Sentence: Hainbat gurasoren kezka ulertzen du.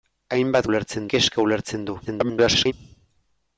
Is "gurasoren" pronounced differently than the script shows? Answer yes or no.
yes